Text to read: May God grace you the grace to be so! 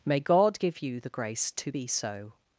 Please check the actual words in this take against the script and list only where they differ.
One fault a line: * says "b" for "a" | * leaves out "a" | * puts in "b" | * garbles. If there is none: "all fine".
* says "give" for "grace"